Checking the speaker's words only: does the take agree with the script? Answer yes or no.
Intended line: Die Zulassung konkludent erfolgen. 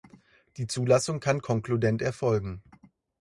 no